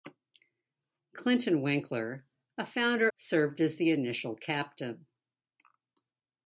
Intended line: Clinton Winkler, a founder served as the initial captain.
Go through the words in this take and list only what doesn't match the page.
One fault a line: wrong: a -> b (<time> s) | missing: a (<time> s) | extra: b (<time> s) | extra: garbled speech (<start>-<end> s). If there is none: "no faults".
no faults